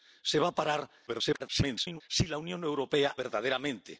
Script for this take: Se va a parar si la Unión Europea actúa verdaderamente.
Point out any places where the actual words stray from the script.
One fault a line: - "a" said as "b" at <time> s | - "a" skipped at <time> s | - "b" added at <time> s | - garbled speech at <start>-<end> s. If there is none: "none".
- garbled speech at 1.1-2.0 s
- "actúa" skipped at 3.2 s